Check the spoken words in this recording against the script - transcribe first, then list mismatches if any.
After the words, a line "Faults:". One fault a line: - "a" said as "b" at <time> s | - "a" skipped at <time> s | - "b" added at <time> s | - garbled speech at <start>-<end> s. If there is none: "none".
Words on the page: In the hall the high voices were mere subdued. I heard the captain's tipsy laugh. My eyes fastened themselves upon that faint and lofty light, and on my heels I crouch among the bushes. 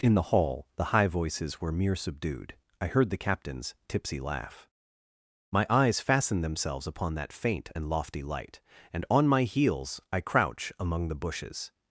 In the hall the high voices were mere subdued. I heard the captain's tipsy laugh. My eyes fastened themselves upon that faint and lofty light, and on my heels I crouch among the bushes.
Faults:
none